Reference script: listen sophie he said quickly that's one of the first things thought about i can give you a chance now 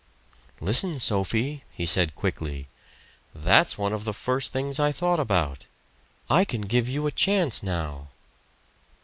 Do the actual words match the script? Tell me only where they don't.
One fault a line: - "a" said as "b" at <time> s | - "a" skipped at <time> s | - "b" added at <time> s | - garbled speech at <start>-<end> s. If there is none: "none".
- "i" added at 4.8 s